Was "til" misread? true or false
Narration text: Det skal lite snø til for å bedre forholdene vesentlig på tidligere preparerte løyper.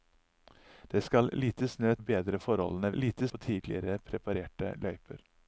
true